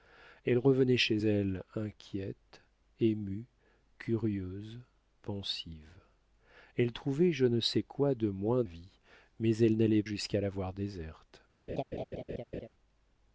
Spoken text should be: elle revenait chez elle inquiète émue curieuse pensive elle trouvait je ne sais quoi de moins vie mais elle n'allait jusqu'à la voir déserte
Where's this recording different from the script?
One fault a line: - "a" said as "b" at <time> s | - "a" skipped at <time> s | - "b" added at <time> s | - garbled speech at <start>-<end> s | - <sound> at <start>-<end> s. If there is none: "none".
- laugh at 11.7-12.7 s